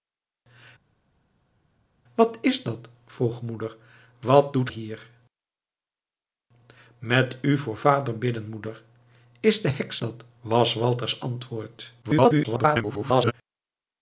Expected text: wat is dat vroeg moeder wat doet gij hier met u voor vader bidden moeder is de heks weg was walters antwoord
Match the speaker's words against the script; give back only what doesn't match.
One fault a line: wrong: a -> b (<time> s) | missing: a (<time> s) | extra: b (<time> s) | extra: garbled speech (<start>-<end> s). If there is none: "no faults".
missing: gij (4.7 s)
wrong: weg -> dat (10.0 s)
extra: garbled speech (12.0-13.3 s)